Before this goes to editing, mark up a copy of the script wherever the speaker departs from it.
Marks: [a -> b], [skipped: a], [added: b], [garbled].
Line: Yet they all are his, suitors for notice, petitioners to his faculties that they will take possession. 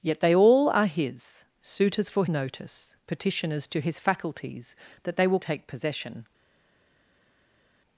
Yet they all are his, suitors for notice, petitioners to his faculties that they will take possession.